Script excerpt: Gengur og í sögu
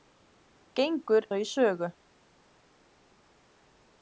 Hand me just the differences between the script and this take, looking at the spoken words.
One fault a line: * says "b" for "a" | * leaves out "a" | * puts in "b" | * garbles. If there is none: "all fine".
all fine